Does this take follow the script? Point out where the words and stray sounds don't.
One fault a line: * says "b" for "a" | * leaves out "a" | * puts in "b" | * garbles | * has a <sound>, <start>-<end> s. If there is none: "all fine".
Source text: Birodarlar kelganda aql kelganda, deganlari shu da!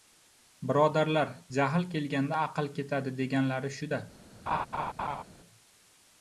* puts in "jahl"
* says "ketadi" for "kelganda"
* has a laugh, 4.5-5.2 s